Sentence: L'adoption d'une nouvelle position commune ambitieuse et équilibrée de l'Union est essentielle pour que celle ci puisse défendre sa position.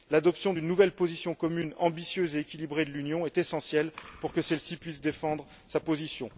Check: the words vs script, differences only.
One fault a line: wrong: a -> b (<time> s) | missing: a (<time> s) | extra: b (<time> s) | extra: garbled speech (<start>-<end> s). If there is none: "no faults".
no faults